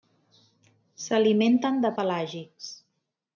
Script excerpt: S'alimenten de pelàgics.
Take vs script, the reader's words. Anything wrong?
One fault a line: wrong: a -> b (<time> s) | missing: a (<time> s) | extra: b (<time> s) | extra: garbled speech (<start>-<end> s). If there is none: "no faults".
no faults